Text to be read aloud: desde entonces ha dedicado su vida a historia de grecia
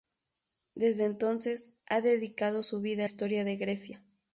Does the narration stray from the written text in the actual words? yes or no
no